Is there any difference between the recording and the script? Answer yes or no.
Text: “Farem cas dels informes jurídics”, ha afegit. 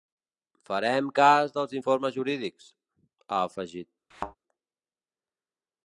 no